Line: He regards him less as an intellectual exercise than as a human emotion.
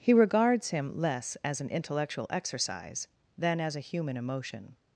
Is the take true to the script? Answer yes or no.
yes